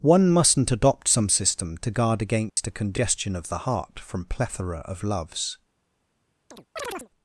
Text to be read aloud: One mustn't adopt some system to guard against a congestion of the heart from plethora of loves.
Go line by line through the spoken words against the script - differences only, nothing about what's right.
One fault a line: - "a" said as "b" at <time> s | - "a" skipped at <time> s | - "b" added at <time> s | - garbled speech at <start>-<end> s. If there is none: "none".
none